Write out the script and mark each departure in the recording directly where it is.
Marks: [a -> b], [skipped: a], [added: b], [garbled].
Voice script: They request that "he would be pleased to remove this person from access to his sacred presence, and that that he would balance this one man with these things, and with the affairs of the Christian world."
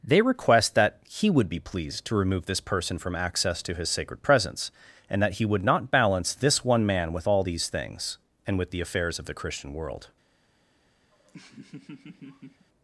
They request that "he would be pleased to remove this person from access to his sacred presence, and that [skipped: that] he would [added: not] balance this one man with [added: all] these things, and with the affairs of the Christian world."